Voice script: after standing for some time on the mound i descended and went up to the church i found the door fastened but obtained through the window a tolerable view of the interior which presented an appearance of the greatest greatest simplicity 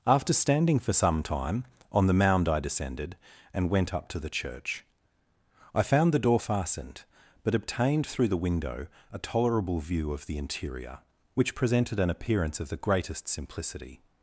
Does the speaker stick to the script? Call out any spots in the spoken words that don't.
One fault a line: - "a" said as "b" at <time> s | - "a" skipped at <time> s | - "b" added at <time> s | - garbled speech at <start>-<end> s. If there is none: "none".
- "greatest" skipped at 13.3 s